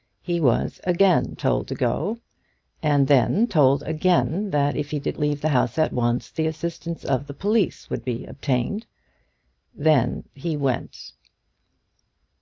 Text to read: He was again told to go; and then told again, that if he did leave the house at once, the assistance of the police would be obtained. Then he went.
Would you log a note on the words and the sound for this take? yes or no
no